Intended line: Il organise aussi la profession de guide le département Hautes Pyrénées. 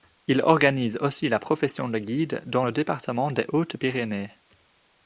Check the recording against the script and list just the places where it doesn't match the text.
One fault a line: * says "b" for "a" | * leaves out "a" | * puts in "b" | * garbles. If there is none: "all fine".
* puts in "dans"
* puts in "des"